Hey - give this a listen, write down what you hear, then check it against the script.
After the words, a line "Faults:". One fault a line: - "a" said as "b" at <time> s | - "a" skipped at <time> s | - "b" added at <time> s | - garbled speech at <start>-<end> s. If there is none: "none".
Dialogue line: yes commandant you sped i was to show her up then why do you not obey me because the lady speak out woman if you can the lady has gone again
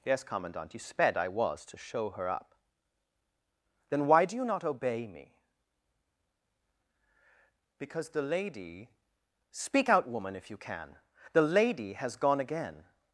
yes commandant you sped i was to show her up then why do you not obey me because the lady speak out woman if you can the lady has gone again
Faults:
none